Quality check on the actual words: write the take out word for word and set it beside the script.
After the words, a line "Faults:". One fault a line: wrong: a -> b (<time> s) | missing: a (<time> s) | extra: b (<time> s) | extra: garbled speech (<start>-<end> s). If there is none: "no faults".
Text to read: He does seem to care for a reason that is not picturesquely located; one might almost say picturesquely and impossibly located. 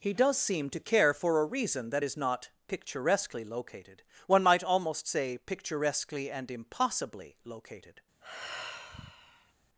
He does seem to care for a reason that is not picturesquely located; one might almost say picturesquely and impossibly located.
Faults:
no faults